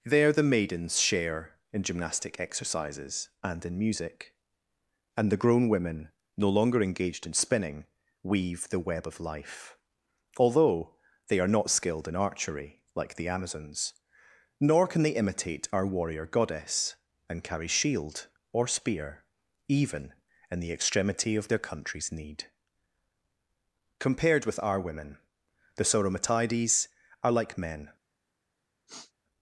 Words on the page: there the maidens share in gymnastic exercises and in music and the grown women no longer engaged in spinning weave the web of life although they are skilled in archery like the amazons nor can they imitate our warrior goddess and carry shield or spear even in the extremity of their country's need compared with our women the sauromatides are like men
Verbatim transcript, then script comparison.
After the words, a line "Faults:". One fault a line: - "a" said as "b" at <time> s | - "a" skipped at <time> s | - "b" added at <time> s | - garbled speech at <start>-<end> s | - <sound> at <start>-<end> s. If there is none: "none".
there the maidens share in gymnastic exercises and in music and the grown women no longer engaged in spinning weave the web of life although they are not skilled in archery like the amazons nor can they imitate our warrior goddess and carry shield or spear even in the extremity of their country's need compared with our women the sauromatides are like men
Faults:
- "not" added at 11.5 s
- sniff at 28.9-29.1 s